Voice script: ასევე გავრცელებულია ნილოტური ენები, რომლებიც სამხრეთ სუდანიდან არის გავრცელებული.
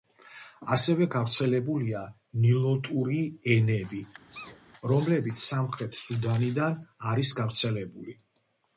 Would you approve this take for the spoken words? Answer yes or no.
yes